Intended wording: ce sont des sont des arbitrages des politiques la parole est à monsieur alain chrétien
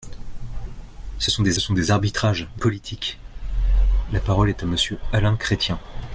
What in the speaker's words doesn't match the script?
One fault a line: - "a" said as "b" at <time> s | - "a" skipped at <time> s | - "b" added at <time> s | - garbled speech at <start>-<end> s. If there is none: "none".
none